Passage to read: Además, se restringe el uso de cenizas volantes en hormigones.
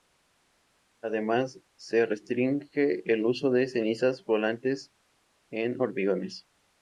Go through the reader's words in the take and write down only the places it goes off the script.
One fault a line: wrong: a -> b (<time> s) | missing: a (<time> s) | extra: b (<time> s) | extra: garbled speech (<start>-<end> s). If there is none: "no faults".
no faults